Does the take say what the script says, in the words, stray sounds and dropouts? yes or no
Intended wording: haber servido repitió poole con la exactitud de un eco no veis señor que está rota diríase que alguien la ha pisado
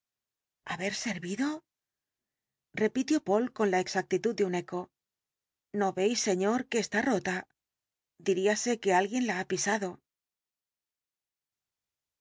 yes